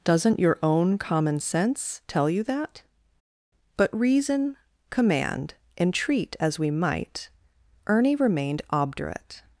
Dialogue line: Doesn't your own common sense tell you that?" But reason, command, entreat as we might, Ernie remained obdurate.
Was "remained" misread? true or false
false